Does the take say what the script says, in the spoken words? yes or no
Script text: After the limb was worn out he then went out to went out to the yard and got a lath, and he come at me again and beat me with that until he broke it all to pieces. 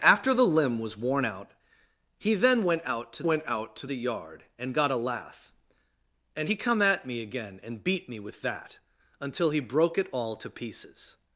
yes